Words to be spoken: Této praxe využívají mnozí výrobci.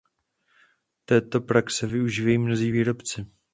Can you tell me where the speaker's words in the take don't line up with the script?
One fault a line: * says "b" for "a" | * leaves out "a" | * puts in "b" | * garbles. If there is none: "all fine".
all fine